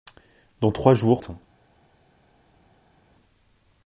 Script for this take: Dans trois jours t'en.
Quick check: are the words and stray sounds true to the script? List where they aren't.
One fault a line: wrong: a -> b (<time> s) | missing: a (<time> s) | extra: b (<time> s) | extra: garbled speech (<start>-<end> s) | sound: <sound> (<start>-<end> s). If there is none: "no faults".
no faults